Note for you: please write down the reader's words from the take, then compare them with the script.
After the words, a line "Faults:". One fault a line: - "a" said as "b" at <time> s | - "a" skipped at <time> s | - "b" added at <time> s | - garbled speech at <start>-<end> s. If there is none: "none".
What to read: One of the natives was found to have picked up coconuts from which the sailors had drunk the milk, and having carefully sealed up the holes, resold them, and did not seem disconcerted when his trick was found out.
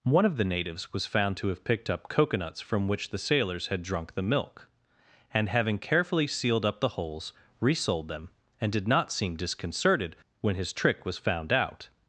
One of the natives was found to have picked up coconuts from which the sailors had drunk the milk, and having carefully sealed up the holes, resold them, and did not seem disconcerted when his trick was found out.
Faults:
none